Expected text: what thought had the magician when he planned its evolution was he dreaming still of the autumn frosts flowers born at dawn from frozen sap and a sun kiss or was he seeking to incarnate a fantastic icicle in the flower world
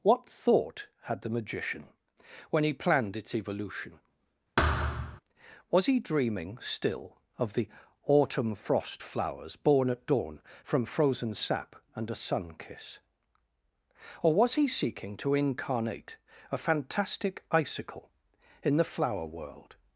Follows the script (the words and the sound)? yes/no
no